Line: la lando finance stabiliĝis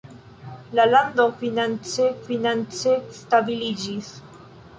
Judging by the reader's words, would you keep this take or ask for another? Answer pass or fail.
fail